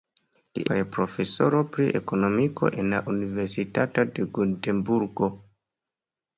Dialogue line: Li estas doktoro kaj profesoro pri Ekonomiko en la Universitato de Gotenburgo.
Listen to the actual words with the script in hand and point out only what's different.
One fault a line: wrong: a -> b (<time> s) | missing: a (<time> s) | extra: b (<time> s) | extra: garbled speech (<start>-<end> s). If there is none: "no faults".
missing: estas doktoro (0.6 s)